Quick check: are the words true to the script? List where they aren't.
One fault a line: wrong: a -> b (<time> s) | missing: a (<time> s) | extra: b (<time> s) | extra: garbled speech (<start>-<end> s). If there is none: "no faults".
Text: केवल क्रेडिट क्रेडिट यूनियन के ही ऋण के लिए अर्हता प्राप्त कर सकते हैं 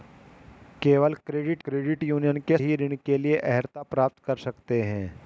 no faults